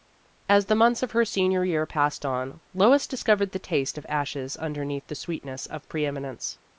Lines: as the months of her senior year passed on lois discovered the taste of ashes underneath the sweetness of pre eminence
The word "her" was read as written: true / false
true